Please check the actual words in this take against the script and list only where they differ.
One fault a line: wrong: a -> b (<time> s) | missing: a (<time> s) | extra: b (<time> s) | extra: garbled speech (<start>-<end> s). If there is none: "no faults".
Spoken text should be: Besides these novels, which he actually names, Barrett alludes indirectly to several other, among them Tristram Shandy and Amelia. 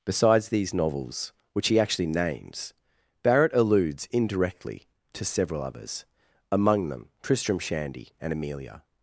wrong: other -> others (5.6 s)